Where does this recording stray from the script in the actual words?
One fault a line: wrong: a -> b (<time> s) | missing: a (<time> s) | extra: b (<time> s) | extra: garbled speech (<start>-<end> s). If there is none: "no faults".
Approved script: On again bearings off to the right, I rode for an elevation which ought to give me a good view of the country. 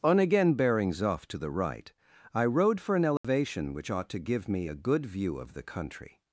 no faults